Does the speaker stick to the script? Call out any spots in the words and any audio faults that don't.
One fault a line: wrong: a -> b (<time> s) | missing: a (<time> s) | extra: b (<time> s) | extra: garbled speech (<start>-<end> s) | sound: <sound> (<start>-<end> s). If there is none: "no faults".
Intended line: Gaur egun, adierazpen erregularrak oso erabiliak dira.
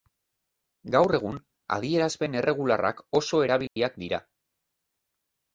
sound: dropout (3.7-3.8 s)